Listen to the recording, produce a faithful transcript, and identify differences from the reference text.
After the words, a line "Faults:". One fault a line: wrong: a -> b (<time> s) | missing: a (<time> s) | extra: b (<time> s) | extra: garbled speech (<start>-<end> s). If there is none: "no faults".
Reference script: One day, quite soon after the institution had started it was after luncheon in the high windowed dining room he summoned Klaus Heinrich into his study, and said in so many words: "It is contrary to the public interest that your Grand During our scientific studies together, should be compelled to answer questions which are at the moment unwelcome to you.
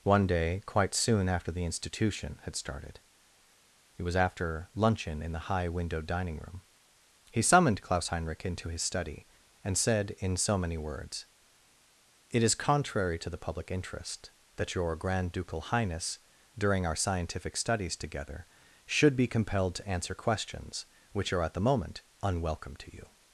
One day, quite soon after the institution had started it was after luncheon in the high windowed dining room he summoned Klaus Heinrich into his study, and said in so many words: "It is contrary to the public interest that your Grand Ducal Highness, during our scientific studies together, should be compelled to answer questions which are at the moment unwelcome to you.
Faults:
extra: Ducal Highness (15.3 s)